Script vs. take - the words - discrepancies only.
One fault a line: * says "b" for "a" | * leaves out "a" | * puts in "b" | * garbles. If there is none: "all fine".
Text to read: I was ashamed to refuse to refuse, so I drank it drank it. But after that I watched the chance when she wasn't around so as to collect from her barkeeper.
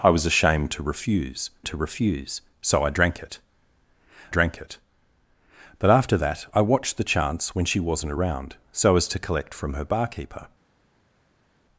all fine